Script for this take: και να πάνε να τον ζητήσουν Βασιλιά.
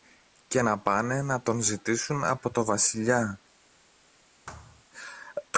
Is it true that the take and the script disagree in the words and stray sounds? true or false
true